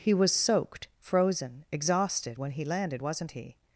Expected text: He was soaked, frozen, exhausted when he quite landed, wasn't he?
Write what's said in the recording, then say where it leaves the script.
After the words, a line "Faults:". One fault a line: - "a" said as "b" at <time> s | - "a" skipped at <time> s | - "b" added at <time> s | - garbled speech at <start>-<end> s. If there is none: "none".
He was soaked, frozen, exhausted when he landed, wasn't he?
Faults:
- "quite" skipped at 2.6 s